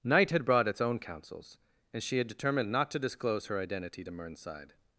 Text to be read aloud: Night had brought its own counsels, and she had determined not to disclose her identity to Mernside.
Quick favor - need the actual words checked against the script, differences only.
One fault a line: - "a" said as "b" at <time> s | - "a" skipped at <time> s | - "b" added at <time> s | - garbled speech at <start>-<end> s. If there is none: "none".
none